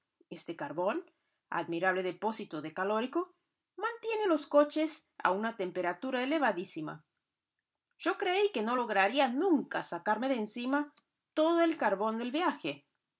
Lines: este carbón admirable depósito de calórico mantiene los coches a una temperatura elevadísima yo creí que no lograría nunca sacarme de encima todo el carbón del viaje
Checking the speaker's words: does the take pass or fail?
pass